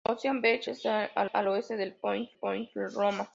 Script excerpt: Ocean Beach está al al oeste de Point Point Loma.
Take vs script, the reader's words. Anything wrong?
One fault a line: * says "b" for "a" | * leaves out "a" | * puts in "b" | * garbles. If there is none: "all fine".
all fine